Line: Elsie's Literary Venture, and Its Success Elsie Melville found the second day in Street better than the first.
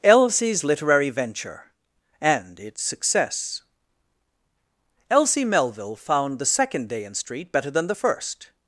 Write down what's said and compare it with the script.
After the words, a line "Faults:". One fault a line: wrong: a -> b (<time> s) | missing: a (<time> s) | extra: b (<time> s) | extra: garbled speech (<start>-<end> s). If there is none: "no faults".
Elsie's Literary Venture, and Its Success Elsie Melville found the second day in Street better than the first.
Faults:
no faults